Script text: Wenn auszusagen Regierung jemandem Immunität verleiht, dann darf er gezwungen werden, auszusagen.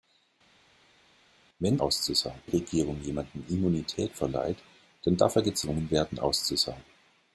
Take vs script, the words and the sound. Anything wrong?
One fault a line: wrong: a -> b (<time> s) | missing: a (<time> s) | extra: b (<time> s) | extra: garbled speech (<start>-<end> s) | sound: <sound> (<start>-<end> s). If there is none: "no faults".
no faults